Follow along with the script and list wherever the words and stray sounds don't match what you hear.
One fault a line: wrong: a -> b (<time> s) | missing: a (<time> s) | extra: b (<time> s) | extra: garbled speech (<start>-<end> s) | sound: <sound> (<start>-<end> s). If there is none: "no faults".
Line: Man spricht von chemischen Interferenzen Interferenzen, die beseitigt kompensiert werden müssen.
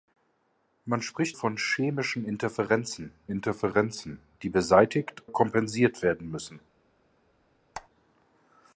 sound: squeak (7.7-7.9 s)